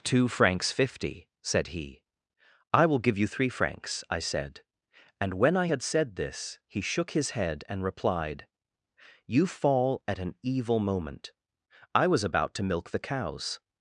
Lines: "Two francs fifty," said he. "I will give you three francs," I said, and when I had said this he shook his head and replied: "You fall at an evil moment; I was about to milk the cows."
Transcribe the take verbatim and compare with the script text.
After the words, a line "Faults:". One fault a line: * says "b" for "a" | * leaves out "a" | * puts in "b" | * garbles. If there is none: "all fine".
"Two francs fifty," said he. "I will give you three francs," I said, and when I had said this he shook his head and replied: "You fall at an evil moment; I was about to milk the cows."
Faults:
all fine